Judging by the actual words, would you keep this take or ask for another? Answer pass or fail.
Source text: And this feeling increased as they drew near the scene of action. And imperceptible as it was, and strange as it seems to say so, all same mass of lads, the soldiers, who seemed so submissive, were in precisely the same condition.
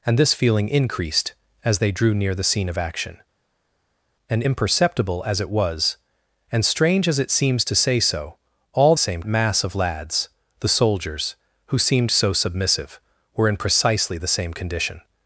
pass